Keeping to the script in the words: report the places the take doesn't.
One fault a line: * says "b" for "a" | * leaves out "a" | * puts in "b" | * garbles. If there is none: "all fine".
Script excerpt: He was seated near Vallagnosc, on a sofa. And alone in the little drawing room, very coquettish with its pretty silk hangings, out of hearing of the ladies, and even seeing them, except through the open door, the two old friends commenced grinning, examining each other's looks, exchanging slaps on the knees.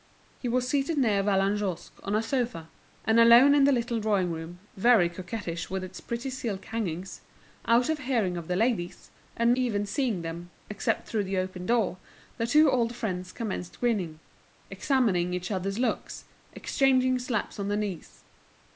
all fine